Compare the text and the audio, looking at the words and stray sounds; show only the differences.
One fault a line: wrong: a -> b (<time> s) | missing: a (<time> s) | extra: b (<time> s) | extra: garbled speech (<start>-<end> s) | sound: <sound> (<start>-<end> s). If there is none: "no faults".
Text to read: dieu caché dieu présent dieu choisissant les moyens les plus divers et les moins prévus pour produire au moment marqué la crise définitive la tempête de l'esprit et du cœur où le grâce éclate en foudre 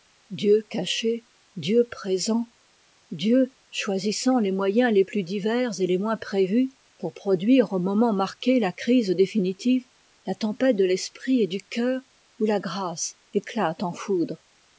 wrong: le -> la (12.4 s)